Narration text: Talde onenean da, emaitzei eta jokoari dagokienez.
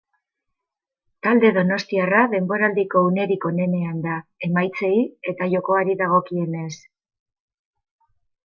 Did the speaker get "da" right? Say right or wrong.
right